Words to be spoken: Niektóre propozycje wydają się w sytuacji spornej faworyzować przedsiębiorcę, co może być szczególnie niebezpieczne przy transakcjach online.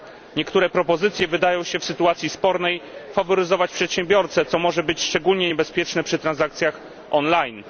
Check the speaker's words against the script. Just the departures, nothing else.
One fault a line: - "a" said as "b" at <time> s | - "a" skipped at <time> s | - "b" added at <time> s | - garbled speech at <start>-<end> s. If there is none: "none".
none